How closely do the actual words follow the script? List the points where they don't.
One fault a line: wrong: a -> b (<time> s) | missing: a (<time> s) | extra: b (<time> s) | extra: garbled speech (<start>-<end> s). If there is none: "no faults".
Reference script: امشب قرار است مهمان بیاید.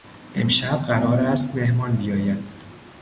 no faults